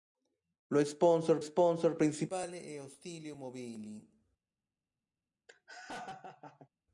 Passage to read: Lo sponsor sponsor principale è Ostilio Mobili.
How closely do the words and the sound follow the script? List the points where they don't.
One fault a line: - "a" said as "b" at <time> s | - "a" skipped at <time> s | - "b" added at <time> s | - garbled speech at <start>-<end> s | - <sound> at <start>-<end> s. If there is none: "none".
- laugh at 5.5-6.7 s